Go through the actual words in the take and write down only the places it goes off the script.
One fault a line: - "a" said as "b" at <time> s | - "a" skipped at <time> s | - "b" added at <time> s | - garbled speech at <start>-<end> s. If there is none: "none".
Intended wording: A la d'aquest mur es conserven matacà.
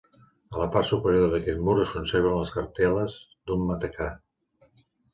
- "part superior" added at 0.8 s
- "les cartel·les d'un" added at 2.4 s